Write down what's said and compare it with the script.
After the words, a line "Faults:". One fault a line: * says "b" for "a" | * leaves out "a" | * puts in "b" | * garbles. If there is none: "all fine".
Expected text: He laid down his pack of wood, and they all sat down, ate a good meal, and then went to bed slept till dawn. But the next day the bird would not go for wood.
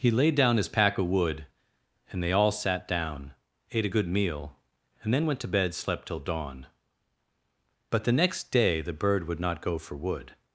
He laid down his pack of wood, and they all sat down, ate a good meal, and then went to bed slept till dawn. But the next day the bird would not go for wood.
Faults:
all fine